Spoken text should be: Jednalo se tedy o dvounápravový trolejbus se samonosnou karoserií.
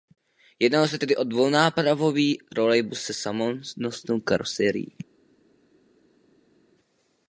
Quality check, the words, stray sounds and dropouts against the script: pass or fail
pass